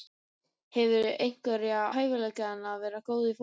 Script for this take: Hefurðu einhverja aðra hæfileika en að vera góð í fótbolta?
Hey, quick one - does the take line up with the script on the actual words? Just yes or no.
no